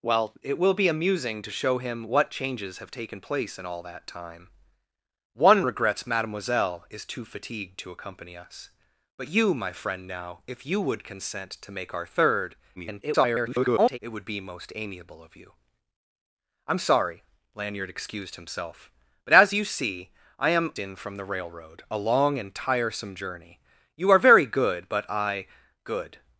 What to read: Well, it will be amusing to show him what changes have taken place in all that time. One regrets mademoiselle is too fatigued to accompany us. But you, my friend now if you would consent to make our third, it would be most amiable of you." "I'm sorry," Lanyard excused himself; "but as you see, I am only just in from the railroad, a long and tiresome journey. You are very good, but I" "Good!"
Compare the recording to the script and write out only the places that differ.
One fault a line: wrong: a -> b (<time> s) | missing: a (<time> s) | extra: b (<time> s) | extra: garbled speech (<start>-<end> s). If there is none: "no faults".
extra: garbled speech (12.8-14.0 s)
missing: only just (20.7 s)